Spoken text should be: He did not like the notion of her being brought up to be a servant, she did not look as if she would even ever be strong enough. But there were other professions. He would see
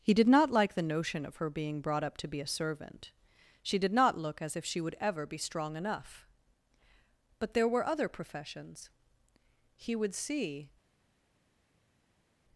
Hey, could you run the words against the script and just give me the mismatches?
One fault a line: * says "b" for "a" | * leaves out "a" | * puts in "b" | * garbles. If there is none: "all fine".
* leaves out "even"